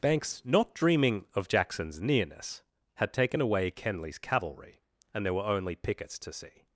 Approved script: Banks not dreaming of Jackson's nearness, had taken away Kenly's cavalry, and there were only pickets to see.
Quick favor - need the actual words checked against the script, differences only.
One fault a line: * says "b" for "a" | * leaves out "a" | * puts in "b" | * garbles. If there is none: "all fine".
all fine